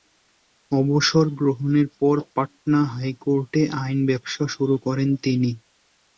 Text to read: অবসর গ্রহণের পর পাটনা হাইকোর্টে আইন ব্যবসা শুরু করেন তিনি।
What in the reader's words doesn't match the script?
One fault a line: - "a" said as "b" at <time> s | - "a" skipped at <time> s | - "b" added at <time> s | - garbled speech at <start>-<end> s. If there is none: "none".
none